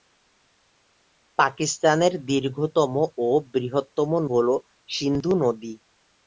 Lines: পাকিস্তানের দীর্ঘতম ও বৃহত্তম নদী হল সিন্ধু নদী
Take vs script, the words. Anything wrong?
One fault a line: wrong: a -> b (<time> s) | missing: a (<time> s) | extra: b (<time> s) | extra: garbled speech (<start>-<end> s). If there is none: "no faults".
missing: নদী (4.1 s)